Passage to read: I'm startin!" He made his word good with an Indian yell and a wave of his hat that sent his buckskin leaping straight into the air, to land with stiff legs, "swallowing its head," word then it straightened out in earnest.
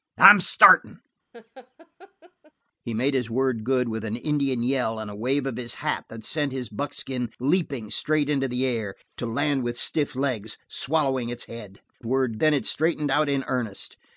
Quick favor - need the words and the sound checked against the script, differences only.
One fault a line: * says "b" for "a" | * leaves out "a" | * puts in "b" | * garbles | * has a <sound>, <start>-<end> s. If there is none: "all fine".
* has a laugh, 1.3-2.5 s